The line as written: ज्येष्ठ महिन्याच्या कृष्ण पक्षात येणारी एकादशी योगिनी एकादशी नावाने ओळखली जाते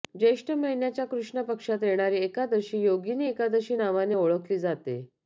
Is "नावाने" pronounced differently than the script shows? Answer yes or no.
no